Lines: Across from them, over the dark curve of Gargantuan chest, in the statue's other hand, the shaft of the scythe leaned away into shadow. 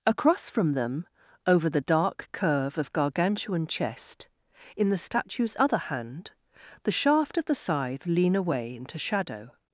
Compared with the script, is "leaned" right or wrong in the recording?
wrong